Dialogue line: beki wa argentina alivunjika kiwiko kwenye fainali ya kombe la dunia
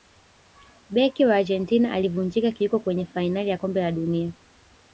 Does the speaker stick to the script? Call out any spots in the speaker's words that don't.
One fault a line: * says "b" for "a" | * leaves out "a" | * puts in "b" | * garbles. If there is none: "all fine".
all fine